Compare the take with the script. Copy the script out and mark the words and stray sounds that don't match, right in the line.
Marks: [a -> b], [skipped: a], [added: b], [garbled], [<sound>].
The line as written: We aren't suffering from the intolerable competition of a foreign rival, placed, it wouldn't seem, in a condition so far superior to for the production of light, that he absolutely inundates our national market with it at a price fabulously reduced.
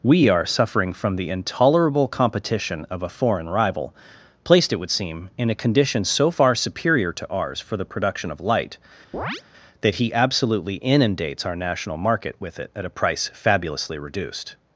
We [aren't -> are] suffering from the intolerable competition of a foreign rival, placed, it [wouldn't -> would] seem, in a condition so far superior to [added: ours] for the production of light, [chirp] that he absolutely inundates our national market with it at a price fabulously reduced.